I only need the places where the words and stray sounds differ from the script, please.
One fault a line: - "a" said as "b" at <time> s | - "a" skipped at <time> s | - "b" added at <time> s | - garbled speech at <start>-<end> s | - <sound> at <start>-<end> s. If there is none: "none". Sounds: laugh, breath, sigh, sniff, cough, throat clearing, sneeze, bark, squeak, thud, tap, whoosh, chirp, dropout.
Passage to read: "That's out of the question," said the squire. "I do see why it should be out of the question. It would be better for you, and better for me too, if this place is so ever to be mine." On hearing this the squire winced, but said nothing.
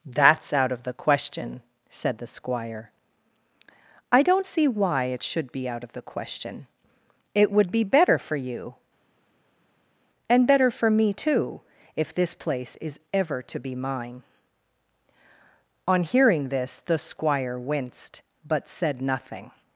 - "do" said as "don't" at 4.2 s
- "so" skipped at 13.0 s